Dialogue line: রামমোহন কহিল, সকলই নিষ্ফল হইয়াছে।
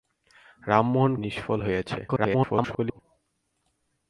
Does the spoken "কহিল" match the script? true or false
false